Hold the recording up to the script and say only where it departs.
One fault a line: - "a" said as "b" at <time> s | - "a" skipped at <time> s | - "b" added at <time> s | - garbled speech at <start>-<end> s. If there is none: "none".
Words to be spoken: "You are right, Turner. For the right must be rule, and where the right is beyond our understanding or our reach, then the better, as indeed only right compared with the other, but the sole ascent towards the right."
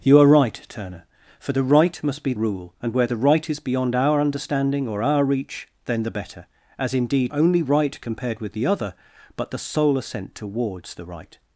none